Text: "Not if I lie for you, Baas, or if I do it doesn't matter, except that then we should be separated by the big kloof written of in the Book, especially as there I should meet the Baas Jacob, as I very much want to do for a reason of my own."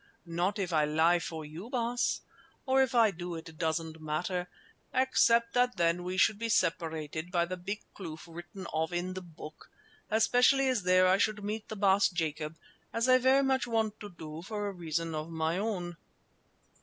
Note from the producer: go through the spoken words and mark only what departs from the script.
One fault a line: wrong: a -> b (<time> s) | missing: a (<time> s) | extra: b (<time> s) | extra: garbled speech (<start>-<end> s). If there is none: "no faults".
no faults